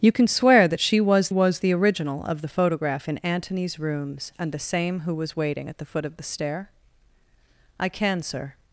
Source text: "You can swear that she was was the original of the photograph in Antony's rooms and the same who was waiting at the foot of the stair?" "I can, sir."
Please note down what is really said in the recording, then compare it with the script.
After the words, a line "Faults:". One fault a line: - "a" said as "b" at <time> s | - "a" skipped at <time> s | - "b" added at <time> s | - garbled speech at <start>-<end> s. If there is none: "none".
"You can swear that she was was the original of the photograph in Antony's rooms and the same who was waiting at the foot of the stair?" "I can, sir."
Faults:
none